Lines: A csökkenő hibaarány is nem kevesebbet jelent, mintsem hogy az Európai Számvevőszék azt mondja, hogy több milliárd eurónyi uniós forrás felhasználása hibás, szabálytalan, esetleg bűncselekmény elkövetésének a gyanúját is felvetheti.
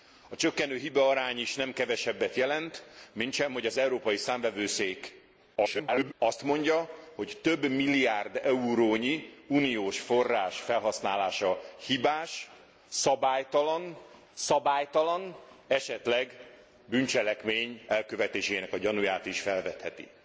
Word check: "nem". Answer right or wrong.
right